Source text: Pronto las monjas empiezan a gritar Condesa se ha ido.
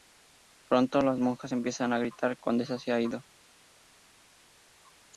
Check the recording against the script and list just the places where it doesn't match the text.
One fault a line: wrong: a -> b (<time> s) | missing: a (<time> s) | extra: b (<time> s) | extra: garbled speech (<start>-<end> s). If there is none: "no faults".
no faults